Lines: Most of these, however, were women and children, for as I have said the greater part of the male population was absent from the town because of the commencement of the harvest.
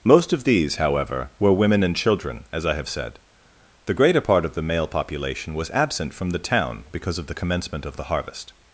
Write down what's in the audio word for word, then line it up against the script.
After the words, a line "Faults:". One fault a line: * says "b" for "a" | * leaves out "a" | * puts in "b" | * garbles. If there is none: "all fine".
Most of these, however, were women and children, as I have said the greater part of the male population was absent from the town because of the commencement of the harvest.
Faults:
* leaves out "for"